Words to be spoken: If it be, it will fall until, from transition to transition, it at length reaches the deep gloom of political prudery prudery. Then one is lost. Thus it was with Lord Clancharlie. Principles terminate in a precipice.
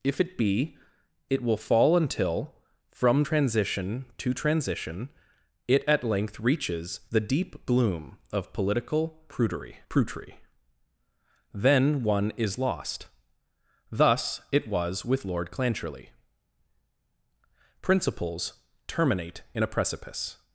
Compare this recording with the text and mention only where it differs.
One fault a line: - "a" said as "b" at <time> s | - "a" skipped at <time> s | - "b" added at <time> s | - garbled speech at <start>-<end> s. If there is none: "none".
none